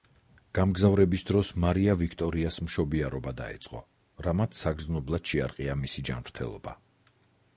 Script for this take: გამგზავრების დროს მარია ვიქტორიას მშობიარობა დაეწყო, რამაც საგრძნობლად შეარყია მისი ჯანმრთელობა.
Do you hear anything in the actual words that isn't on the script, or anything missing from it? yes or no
no